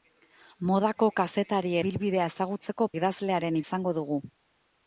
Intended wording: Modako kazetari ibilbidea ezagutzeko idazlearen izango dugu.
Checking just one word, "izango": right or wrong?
right